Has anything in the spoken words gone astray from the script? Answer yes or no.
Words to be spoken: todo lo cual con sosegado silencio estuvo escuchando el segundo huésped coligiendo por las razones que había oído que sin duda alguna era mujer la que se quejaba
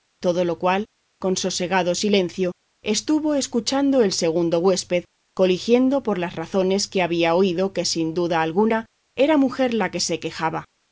no